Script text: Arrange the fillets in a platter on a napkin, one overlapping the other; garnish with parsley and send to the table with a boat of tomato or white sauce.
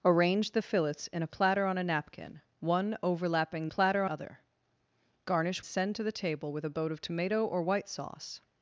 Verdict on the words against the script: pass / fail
fail